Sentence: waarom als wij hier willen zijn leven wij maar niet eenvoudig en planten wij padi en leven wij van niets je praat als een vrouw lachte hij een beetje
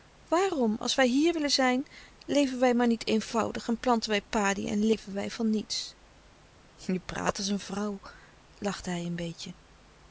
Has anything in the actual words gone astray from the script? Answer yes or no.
no